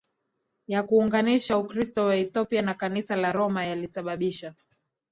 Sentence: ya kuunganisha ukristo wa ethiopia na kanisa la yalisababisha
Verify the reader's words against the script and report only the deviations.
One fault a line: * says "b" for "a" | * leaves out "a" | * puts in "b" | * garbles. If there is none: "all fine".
* puts in "roma"